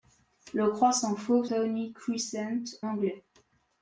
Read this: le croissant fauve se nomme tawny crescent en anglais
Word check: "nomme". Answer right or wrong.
wrong